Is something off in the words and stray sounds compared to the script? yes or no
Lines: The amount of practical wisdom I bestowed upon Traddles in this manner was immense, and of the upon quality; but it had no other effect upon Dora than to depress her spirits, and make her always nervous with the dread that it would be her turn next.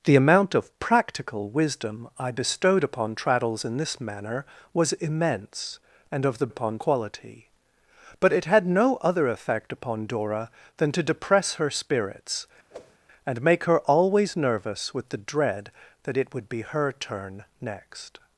yes